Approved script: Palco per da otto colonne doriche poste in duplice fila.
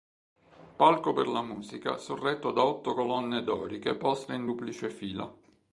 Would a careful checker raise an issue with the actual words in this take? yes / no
yes